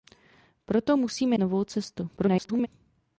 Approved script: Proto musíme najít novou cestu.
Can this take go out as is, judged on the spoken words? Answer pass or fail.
fail